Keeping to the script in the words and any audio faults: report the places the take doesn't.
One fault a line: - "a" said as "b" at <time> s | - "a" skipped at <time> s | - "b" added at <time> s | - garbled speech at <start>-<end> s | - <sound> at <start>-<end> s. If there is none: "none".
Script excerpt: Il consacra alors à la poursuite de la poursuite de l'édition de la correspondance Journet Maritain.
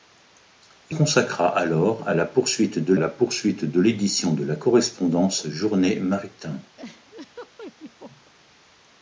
- laugh at 6.8-8.3 s